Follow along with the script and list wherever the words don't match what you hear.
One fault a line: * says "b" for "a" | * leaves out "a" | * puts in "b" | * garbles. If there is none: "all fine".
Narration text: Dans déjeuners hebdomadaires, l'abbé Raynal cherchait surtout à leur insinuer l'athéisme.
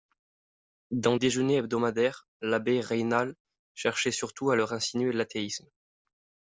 all fine